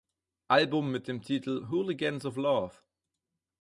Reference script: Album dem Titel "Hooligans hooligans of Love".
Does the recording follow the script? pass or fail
fail